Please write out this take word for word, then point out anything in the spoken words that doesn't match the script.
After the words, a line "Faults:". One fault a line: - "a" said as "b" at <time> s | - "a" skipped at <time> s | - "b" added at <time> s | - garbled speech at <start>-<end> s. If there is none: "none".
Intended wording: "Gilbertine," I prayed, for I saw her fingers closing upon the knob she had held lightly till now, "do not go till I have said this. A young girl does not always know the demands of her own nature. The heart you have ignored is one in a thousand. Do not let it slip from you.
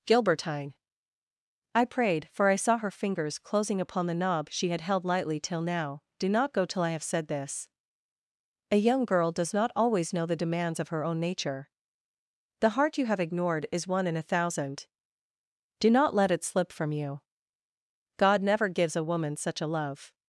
"Gilbertine," I prayed, for I saw her fingers closing upon the knob she had held lightly till now, "do not go till I have said this. A young girl does not always know the demands of her own nature. The heart you have ignored is one in a thousand. Do not let it slip from you. God never gives a woman such a love
Faults:
- "God never gives a woman such a love" added at 18.2 s